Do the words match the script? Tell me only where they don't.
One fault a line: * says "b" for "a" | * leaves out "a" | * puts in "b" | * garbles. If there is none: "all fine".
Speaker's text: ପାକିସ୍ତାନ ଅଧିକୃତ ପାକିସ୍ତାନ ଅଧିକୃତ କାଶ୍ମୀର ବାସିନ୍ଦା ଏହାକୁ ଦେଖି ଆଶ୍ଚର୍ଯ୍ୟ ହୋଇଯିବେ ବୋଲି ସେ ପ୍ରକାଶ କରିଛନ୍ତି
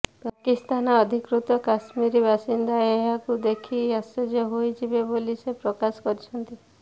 * leaves out "ପାକିସ୍ତାନ ଅଧିକୃତ"